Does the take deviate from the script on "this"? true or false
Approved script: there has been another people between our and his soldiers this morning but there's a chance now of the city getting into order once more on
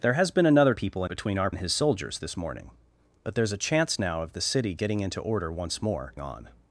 false